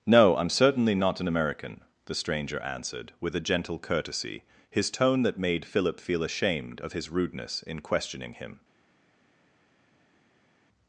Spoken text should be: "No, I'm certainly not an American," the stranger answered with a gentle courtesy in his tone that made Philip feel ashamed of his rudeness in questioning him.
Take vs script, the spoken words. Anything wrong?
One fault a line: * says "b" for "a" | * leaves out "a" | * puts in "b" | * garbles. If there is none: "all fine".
* leaves out "in"